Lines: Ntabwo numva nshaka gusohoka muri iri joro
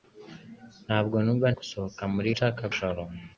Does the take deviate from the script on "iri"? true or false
true